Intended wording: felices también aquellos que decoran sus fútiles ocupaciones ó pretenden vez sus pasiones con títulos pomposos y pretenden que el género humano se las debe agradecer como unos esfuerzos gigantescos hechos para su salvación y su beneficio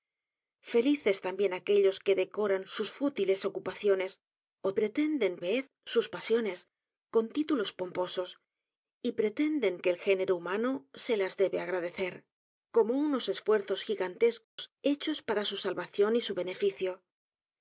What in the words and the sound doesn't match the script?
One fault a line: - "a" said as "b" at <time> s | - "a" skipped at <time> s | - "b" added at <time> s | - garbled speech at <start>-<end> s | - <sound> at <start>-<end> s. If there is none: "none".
- dropout at 14.4-14.6 s